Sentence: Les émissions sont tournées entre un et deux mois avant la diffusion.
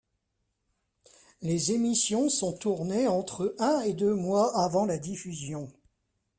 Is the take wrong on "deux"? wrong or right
right